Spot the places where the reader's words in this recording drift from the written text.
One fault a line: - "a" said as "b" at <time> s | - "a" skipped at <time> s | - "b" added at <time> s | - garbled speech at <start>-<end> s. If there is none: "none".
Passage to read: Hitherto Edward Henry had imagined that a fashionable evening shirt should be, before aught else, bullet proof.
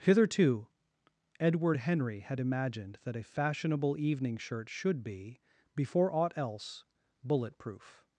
none